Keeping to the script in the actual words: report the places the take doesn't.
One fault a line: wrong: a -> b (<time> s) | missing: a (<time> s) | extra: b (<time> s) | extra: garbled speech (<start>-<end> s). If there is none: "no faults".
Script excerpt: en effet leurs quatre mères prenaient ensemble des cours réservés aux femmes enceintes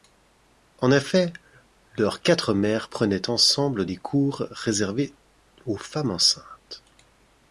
no faults